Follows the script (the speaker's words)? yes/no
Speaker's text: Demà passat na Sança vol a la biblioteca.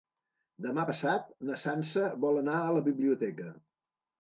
no